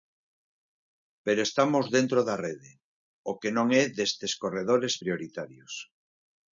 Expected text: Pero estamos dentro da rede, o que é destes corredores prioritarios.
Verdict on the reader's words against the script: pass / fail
fail